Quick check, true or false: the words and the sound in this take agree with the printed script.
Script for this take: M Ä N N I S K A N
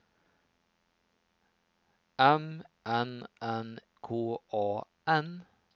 false